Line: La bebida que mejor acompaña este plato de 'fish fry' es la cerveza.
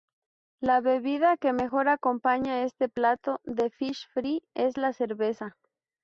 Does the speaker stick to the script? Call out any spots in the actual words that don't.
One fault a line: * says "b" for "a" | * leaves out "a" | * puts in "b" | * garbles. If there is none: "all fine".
all fine